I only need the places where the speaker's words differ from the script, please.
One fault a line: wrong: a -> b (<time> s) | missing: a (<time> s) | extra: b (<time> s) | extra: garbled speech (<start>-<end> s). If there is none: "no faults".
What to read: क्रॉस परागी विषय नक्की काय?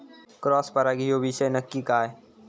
extra: ह्यो (1.1 s)